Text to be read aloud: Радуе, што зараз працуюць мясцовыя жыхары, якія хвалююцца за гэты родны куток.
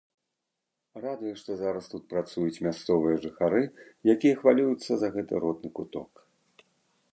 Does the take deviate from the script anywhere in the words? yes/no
yes